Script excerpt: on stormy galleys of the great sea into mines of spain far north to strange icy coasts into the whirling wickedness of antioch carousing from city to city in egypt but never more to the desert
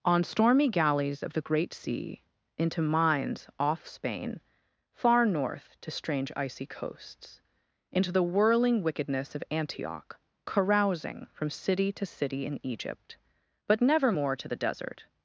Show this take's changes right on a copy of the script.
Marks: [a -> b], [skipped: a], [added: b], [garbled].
on stormy galleys of the great sea into mines [of -> off] spain far north to strange icy coasts into the whirling wickedness of antioch carousing from city to city in egypt but never more to the desert